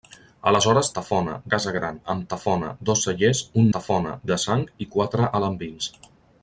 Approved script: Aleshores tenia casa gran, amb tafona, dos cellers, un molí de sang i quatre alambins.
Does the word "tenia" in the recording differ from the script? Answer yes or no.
yes